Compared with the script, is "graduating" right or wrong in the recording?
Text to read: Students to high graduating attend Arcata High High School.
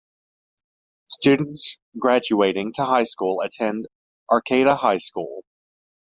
wrong